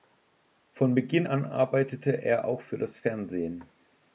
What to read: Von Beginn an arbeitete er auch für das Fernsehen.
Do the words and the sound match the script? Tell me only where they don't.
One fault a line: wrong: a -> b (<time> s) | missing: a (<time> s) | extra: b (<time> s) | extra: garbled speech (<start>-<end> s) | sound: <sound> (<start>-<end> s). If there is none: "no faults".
no faults